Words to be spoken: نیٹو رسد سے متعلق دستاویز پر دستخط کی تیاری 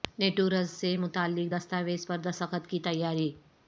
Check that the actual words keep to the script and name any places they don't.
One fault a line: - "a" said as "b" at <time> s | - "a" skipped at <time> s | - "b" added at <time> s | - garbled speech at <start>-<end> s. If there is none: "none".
none